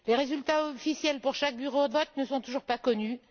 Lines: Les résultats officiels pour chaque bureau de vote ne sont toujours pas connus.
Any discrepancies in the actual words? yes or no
no